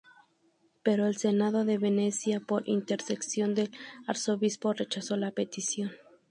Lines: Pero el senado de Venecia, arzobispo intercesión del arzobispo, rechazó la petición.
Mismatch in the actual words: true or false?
true